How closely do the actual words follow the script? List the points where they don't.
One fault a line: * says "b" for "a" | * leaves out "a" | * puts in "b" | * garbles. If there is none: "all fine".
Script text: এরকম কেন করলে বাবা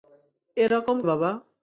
* leaves out "কেন করলে"